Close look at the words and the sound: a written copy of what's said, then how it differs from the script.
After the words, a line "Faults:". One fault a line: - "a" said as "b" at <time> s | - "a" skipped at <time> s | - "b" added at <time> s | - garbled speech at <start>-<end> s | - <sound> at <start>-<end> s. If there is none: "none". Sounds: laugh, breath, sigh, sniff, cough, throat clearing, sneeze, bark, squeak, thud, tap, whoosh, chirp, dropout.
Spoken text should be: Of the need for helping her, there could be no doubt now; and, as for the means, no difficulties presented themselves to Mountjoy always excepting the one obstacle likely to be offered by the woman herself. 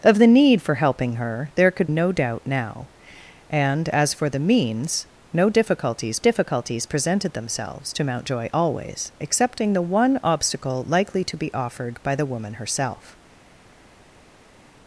Of the need for helping her, there could no doubt now; and, as for the means, no difficulties difficulties presented themselves to Mountjoy always excepting the one obstacle likely to be offered by the woman herself.
Faults:
- "be" skipped at 1.9 s
- "difficulties" added at 6.2 s